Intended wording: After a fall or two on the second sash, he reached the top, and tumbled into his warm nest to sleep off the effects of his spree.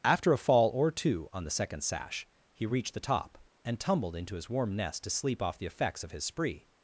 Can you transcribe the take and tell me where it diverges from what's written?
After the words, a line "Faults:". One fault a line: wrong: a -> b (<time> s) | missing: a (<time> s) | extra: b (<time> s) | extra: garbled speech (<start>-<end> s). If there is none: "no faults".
After a fall or two on the second sash, he reached the top, and tumbled into his warm nest to sleep off the effects of his spree.
Faults:
no faults